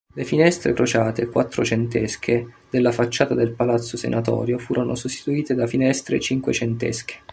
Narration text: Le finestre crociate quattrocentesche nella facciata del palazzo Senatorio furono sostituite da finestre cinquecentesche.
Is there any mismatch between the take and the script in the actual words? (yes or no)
yes